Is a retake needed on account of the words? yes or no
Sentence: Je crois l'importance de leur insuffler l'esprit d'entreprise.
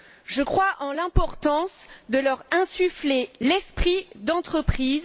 yes